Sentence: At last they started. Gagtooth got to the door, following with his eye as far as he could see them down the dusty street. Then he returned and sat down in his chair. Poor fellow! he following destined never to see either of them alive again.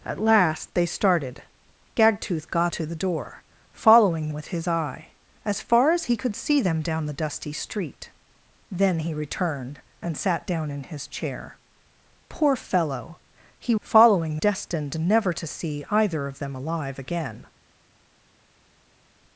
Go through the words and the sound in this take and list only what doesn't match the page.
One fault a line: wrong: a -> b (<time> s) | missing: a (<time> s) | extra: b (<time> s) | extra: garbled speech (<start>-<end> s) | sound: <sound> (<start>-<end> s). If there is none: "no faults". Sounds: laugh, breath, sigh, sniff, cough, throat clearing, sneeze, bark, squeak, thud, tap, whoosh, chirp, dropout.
no faults